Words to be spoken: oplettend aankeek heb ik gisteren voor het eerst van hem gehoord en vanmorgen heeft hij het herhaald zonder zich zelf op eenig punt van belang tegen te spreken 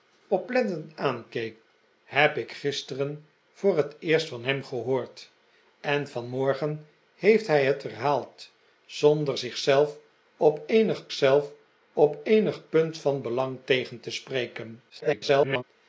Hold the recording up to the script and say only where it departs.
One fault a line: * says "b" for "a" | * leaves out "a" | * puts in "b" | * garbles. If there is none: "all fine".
* puts in "zelf op eenig"
* garbles